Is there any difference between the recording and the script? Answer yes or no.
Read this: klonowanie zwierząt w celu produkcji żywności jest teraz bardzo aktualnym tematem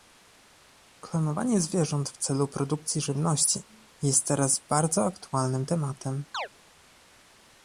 no